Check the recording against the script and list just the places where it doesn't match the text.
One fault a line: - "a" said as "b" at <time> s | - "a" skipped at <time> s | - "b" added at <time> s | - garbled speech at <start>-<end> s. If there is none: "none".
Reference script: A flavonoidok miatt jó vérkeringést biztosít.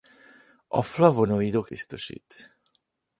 - "miatt jó vérkeringést" skipped at 1.7 s